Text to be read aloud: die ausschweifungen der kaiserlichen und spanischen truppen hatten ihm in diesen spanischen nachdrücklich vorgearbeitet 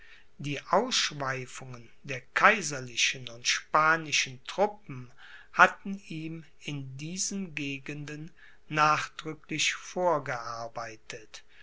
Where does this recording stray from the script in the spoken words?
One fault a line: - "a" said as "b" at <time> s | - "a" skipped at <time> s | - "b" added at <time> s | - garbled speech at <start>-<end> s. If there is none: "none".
- "spanischen" said as "gegenden" at 7.5 s